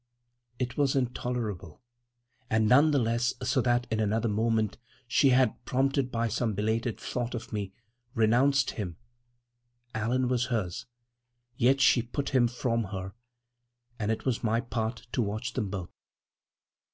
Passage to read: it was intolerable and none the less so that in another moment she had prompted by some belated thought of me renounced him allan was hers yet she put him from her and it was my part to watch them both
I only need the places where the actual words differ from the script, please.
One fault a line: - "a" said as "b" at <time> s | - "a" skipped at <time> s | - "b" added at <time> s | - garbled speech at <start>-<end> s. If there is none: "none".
none